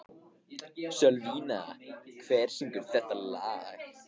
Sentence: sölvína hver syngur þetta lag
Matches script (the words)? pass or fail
pass